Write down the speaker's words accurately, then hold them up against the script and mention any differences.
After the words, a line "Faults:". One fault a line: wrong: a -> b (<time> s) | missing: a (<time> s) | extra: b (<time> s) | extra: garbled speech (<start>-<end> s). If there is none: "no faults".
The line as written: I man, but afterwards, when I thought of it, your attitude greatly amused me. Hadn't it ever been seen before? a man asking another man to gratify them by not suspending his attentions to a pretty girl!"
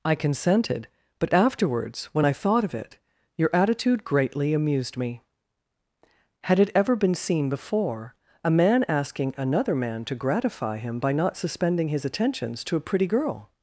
I consented, but afterwards, when I thought of it, your attitude greatly amused me. Had it ever been seen before? a man asking another man to gratify him by not suspending his attentions to a pretty girl!"
Faults:
wrong: man -> consented (0.1 s)
wrong: Hadn't -> Had (6.4 s)
wrong: them -> him (10.8 s)